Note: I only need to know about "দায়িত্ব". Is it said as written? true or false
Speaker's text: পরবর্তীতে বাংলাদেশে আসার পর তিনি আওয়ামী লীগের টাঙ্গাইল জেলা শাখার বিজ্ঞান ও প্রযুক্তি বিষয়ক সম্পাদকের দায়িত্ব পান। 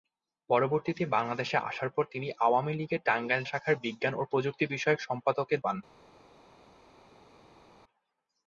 false